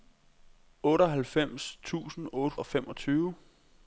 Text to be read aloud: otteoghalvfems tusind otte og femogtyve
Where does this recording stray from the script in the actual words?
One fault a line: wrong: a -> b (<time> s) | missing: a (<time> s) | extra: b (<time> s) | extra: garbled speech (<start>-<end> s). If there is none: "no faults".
no faults